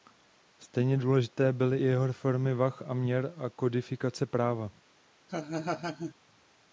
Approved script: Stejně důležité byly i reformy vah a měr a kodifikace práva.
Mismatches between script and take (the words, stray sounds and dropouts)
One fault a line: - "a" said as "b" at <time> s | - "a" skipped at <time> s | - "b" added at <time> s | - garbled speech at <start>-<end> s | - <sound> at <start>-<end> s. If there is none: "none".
- "jeho" added at 1.8 s
- laugh at 5.3-6.1 s